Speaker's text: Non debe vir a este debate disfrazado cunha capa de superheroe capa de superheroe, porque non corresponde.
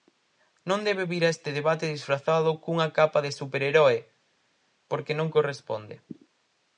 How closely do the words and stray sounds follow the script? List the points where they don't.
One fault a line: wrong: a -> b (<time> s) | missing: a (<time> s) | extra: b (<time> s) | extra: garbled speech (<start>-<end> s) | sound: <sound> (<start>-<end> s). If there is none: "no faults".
missing: capa de superheroe (4.0 s)